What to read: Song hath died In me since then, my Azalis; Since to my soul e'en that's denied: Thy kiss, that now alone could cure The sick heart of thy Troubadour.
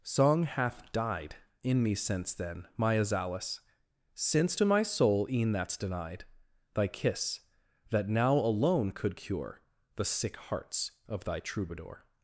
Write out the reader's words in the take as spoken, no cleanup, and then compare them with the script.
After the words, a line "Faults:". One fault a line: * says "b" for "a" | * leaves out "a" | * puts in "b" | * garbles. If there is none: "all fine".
Song hath died In me since then, my Azalis; Since to my soul e'en that's denied: Thy kiss, that now alone could cure The sick hearts of thy Troubadour.
Faults:
* says "hearts" for "heart"